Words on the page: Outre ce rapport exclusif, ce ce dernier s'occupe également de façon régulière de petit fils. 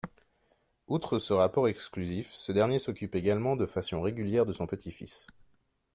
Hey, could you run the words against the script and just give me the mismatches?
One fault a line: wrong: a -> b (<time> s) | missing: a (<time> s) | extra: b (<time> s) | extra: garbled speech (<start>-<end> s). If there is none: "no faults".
missing: ce (2.5 s)
extra: son (4.5 s)